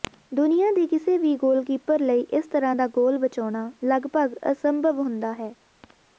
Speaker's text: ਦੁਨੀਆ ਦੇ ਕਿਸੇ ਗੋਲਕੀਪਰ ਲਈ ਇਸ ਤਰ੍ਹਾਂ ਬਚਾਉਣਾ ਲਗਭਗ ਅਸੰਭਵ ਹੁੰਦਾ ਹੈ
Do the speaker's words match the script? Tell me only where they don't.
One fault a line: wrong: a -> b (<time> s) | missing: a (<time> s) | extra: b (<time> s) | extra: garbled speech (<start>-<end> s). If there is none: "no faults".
extra: ਵੀ (1.2 s)
extra: ਦਾ ਗੋਲ (2.7 s)